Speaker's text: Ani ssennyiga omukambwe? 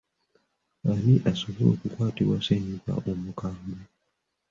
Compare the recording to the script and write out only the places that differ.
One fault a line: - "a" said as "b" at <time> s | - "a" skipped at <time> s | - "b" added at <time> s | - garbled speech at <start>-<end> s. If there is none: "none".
- "asobola okukwatibwa" added at 1.3 s